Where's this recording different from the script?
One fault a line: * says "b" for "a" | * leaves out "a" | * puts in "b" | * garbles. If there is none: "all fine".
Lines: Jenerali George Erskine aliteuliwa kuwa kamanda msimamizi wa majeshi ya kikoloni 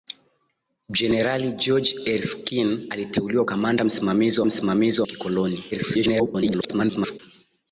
* leaves out "kuwa"
* says "msimamizi" for "majeshi"
* garbles